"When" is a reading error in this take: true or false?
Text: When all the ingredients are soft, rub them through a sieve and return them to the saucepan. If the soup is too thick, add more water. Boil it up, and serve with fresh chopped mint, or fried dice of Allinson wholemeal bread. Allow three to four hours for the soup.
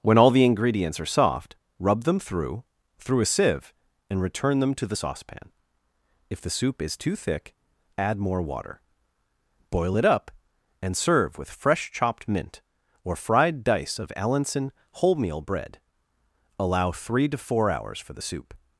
false